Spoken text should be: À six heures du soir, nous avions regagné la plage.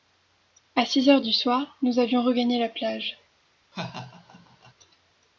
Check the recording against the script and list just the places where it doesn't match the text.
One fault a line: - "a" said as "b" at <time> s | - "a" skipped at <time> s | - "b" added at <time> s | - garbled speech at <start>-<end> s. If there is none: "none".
none